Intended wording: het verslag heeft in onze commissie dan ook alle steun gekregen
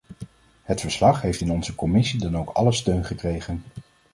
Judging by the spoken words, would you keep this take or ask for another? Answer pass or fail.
pass